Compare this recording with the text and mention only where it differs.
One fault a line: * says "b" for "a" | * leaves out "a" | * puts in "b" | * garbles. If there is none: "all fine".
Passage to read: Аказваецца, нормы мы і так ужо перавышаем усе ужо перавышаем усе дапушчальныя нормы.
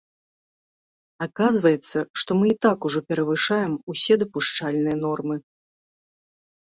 * says "што" for "нормы"
* leaves out "ужо перавышаем усе"